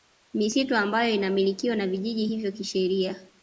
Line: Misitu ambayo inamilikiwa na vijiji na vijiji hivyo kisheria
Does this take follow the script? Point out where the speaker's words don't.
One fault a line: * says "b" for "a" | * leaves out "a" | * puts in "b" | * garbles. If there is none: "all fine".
* leaves out "na vijiji"